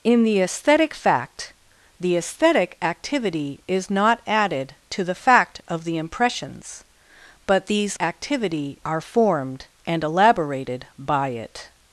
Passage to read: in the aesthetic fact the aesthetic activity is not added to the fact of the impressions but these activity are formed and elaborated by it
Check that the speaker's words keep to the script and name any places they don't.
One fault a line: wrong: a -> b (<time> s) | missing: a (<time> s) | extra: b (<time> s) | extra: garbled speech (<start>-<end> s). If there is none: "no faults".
no faults